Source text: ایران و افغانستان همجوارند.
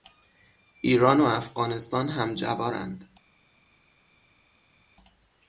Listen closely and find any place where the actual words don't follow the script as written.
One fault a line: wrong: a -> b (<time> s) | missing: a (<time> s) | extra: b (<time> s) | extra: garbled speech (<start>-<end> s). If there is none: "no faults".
no faults